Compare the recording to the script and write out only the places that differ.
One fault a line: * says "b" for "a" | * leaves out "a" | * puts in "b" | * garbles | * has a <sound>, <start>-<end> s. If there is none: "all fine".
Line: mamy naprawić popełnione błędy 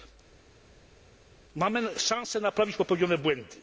* puts in "szansę"